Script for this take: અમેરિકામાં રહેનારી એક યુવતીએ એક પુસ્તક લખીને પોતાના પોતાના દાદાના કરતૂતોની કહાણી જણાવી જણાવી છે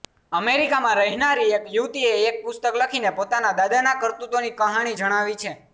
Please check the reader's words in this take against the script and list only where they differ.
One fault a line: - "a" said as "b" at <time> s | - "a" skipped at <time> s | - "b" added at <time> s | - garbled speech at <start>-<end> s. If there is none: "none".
- "પોતાના" skipped at 3.5 s
- "જણાવી" skipped at 5.4 s